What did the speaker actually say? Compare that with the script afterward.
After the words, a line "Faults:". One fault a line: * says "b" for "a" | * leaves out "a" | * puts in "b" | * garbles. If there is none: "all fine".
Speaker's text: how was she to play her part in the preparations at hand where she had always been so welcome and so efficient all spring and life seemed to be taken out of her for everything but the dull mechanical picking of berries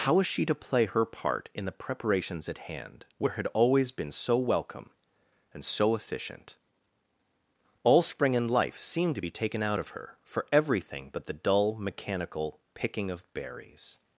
how was she to play her part in the preparations at hand where had always been so welcome and so efficient all spring and life seemed to be taken out of her for everything but the dull mechanical picking of berries
Faults:
* leaves out "she"